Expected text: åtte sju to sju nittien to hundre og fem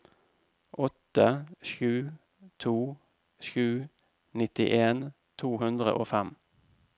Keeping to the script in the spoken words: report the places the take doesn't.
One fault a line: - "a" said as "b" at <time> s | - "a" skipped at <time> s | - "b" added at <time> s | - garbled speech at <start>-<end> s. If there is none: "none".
none